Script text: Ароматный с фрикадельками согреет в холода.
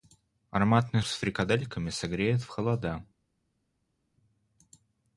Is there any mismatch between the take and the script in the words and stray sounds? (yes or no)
no